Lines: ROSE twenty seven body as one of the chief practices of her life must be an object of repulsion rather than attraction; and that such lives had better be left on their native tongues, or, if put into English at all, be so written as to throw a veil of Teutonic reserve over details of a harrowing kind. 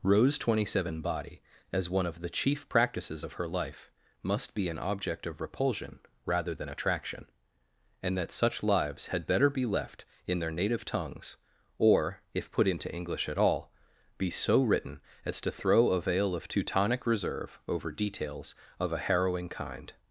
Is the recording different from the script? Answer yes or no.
yes